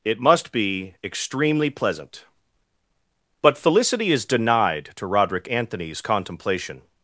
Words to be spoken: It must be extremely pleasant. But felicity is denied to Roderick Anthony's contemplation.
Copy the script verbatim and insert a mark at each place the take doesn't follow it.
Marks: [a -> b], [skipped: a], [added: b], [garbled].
It must be extremely pleasant. But felicity is denied to Roderick Anthony's contemplation.